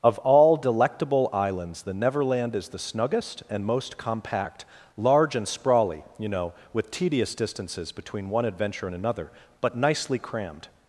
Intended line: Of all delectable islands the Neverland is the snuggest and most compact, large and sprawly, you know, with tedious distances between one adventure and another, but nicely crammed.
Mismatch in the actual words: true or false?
false